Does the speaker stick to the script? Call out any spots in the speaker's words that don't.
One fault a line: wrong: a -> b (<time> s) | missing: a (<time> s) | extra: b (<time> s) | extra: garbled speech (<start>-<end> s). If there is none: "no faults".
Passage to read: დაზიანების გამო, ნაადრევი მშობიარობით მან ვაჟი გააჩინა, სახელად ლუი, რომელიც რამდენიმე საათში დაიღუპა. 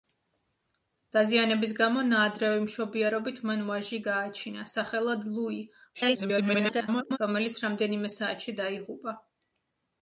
extra: garbled speech (5.9-7.2 s)